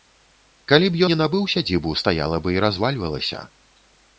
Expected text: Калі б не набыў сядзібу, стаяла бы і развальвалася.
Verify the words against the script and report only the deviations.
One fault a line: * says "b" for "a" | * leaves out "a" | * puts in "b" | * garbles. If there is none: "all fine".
all fine